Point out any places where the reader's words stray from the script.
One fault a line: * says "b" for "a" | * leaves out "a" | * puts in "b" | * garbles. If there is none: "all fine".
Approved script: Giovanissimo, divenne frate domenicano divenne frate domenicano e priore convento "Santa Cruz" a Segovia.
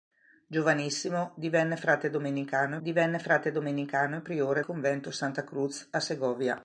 all fine